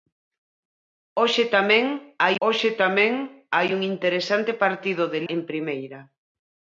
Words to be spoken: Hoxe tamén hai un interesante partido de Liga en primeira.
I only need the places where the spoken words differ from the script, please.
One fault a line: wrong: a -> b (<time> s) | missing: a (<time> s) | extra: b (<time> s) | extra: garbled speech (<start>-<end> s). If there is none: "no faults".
extra: hoxe tamén hai (2.5 s)
missing: Liga (5.2 s)